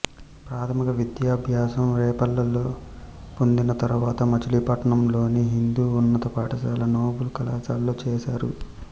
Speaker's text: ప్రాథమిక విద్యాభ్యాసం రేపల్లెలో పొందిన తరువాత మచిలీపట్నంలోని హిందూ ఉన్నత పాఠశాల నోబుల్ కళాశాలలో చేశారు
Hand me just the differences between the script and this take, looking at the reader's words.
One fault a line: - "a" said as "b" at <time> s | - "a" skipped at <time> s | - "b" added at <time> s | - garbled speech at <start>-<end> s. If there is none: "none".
none